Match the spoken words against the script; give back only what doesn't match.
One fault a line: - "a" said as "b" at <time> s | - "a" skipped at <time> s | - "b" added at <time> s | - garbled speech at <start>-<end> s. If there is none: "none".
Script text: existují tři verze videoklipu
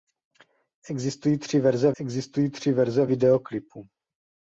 - "existují tři verze" added at 2.0 s